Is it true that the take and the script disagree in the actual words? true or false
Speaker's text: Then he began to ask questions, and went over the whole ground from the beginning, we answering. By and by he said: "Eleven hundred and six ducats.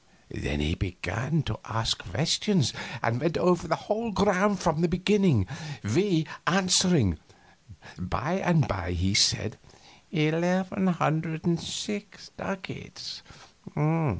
false